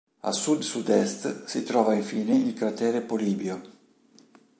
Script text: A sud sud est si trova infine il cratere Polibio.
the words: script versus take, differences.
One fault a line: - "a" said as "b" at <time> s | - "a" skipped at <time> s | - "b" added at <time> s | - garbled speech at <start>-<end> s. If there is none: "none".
none